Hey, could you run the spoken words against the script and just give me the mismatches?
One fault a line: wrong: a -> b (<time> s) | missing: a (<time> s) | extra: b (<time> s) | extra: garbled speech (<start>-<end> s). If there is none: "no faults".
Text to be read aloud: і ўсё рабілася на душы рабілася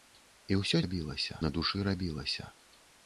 no faults